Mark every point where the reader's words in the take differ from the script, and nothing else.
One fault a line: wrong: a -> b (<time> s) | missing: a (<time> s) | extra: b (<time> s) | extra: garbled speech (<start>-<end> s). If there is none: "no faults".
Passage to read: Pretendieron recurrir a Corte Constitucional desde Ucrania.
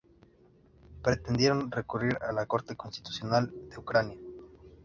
extra: la (2.3 s)
wrong: desde -> de (3.7 s)